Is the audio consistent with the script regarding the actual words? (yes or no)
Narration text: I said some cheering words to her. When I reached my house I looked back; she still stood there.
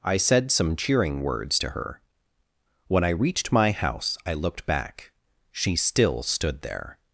yes